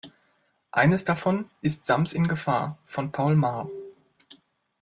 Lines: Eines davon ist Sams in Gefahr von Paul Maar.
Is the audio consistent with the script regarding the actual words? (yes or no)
yes